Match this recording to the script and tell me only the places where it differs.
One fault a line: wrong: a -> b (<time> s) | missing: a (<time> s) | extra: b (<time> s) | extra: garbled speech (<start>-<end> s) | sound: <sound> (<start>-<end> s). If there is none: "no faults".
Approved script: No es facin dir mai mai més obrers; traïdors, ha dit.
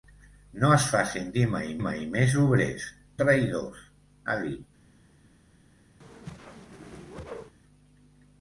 sound: whoosh (6.0-7.6 s)